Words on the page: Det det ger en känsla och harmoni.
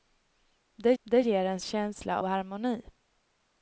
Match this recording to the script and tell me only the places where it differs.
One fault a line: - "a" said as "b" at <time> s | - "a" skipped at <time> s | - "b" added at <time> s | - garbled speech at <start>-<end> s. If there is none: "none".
none